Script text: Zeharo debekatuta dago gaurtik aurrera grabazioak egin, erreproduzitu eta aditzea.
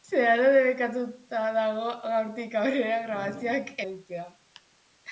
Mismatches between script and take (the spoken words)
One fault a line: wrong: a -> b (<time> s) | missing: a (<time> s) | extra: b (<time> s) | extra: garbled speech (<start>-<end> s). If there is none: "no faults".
missing: egin erreproduzitu eta (3.7 s)